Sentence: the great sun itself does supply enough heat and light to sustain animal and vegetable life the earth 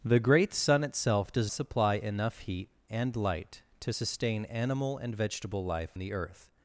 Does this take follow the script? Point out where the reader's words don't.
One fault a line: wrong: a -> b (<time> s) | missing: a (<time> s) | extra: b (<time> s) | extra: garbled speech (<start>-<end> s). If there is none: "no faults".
no faults